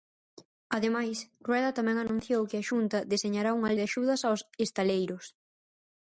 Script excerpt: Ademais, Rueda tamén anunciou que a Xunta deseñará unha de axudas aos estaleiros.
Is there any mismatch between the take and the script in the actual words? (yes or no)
no